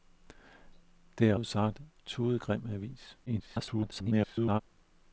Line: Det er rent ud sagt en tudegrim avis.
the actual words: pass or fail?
fail